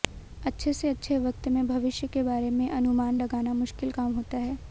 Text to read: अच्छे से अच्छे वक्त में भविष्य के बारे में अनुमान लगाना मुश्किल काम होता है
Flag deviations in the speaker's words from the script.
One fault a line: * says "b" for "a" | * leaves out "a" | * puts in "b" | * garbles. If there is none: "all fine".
all fine